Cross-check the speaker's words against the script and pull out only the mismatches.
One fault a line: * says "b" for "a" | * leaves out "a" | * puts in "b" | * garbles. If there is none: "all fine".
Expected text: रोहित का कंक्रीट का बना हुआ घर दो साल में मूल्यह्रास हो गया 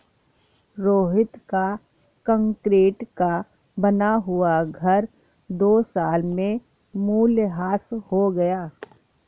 all fine